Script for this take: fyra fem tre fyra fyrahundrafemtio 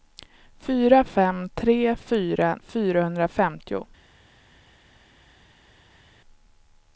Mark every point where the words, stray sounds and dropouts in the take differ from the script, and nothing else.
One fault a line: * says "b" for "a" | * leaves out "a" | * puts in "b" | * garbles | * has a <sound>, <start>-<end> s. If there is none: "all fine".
all fine